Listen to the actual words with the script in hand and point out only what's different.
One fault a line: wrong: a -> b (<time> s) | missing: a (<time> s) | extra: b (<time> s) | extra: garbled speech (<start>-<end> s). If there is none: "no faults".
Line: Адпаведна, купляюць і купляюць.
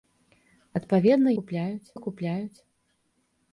no faults